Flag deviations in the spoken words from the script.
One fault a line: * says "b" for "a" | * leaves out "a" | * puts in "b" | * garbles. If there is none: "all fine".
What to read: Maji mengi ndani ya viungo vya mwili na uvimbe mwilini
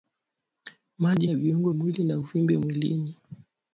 * leaves out "mengi ndani"
* leaves out "vya"